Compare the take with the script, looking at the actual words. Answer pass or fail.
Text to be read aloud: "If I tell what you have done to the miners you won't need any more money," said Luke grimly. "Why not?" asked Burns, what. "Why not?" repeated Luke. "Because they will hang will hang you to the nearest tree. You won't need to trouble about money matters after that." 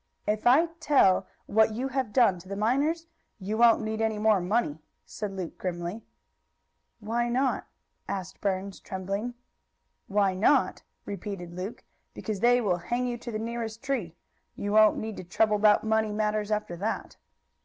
fail